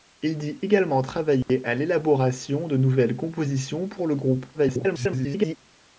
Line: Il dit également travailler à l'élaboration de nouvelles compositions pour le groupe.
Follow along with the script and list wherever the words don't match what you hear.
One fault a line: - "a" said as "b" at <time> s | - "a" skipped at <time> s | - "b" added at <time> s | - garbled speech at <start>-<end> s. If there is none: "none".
- garbled speech at 4.5-5.6 s